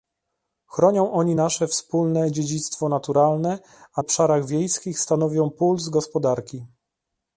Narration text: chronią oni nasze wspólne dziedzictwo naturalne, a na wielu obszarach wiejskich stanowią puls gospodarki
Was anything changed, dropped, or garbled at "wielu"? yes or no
yes